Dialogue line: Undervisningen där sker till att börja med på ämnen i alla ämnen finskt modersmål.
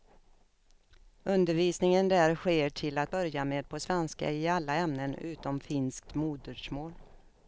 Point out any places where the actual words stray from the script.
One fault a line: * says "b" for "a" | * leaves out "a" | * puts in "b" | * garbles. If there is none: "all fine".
* says "svenska" for "ämnen"
* puts in "utom"